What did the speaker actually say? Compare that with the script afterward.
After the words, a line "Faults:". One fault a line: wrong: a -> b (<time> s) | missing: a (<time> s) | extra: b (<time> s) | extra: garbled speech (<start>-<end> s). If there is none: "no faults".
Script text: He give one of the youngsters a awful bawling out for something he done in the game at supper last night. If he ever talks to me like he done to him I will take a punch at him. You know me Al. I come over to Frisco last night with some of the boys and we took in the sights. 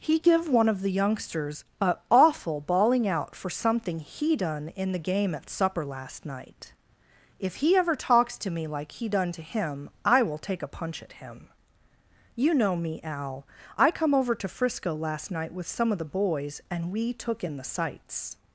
He give one of the youngsters a awful bawling out for something he done in the game at supper last night. If he ever talks to me like he done to him I will take a punch at him. You know me Al. I come over to Frisco last night with some of the boys and we took in the sights.
Faults:
no faults